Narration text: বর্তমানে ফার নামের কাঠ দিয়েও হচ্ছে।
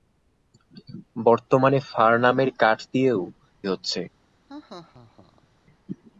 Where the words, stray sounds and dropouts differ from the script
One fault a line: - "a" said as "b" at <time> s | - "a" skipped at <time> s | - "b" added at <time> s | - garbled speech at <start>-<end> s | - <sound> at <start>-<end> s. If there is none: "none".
- laugh at 4.5-5.5 s